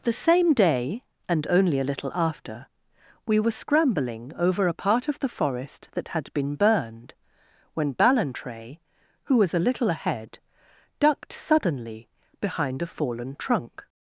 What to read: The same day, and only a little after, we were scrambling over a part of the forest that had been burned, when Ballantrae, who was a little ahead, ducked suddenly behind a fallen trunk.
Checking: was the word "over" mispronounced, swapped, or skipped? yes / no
no